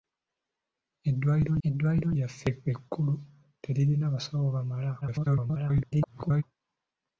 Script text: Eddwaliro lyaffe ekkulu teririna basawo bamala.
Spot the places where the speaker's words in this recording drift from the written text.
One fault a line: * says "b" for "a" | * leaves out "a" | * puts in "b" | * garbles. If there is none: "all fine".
* puts in "eddwaliro"
* garbles